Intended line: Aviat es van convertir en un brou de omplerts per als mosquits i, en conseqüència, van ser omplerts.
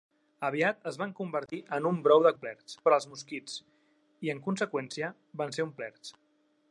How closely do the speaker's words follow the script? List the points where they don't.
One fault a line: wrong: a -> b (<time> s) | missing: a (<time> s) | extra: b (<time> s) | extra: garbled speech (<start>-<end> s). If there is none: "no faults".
no faults